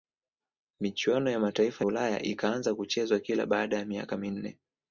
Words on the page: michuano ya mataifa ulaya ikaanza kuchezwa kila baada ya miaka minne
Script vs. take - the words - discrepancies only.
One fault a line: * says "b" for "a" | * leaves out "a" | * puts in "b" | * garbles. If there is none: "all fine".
all fine